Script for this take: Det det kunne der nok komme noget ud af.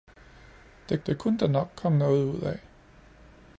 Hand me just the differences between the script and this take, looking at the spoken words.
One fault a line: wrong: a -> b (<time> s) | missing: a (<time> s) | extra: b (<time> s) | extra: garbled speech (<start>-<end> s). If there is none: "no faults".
no faults